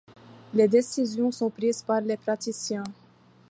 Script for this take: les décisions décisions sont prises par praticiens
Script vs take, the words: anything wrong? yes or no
yes